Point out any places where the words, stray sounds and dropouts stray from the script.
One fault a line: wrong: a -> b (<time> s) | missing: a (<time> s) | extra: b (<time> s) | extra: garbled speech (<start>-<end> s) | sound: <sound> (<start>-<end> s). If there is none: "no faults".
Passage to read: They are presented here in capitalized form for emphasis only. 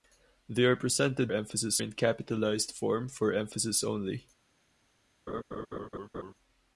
wrong: here -> emphasis (1.3 s)
sound: laugh (5.3-6.3 s)